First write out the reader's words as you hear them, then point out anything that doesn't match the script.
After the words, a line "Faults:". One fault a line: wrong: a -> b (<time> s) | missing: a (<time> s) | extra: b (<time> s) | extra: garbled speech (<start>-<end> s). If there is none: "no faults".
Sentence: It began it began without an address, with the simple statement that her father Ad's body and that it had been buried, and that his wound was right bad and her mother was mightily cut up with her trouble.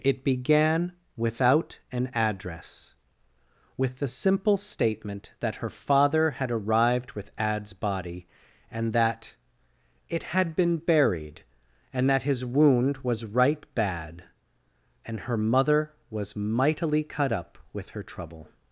It began without an address, with the simple statement that her father had arrived with Ad's body and that it had been buried, and that his wound was right bad and her mother was mightily cut up with her trouble.
Faults:
missing: it began (0.9 s)
extra: had arrived with (6.3 s)